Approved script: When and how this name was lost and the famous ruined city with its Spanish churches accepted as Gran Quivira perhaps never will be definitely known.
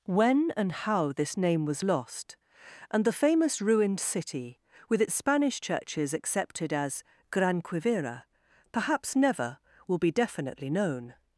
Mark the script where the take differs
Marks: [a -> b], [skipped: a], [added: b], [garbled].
When and how this name was lost and the famous ruined city with its Spanish churches accepted as Gran Quivira perhaps never will be definitely known.